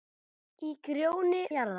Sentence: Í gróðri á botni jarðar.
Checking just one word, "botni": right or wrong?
wrong